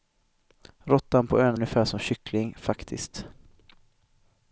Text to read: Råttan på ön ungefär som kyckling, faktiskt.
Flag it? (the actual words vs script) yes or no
no